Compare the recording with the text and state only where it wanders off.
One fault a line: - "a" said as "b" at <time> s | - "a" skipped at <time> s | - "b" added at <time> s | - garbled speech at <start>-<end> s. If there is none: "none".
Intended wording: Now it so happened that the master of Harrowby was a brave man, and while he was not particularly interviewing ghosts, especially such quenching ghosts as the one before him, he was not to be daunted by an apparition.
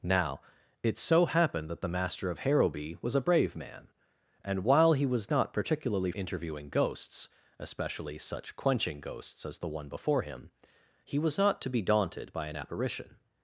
none